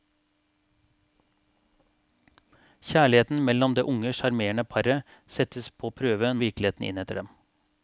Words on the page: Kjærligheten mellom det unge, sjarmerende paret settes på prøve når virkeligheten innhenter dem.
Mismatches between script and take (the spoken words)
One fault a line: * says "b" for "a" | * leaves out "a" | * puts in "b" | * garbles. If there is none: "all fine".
* leaves out "når"